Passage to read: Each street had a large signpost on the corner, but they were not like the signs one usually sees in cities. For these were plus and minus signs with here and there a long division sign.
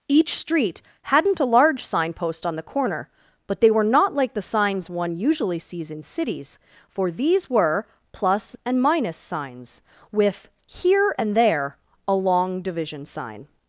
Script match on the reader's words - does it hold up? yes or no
no